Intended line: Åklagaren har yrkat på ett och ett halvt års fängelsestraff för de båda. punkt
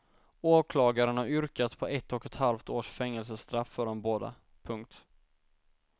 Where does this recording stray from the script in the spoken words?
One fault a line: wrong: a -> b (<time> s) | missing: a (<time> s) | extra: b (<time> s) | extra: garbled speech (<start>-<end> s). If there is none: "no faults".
no faults